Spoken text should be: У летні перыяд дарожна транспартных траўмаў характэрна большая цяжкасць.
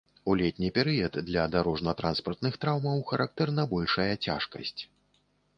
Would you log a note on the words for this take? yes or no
yes